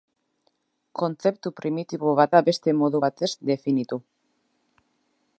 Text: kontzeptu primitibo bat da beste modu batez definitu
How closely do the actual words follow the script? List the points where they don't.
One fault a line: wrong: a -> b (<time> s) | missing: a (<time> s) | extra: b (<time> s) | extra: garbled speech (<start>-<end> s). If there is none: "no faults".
no faults